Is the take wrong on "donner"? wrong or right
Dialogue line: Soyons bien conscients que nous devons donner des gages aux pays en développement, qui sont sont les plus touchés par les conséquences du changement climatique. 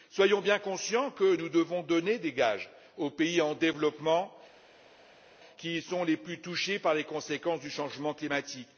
right